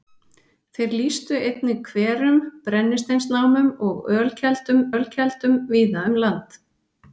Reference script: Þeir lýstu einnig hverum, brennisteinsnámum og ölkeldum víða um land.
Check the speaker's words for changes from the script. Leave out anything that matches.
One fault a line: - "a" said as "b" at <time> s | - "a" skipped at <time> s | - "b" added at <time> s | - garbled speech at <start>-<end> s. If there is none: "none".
- "ölkeldum" added at 4.9 s